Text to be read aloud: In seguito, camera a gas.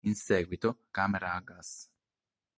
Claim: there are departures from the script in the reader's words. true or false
false